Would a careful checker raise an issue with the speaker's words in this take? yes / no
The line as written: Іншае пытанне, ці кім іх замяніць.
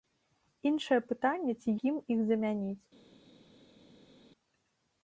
no